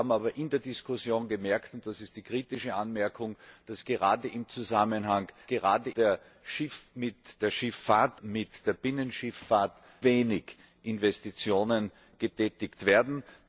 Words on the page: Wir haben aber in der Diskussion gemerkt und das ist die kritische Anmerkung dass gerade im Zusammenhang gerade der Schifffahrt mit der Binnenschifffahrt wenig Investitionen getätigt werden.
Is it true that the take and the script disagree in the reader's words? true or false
false